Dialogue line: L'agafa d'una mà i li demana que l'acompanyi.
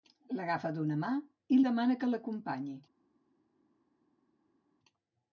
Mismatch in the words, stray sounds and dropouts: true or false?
true